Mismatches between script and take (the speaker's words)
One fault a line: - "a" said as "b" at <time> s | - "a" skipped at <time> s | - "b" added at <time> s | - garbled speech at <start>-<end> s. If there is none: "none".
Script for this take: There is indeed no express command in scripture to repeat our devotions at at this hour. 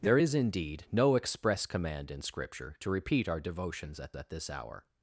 none